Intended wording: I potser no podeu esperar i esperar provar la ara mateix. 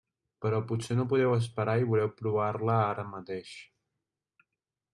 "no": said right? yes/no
yes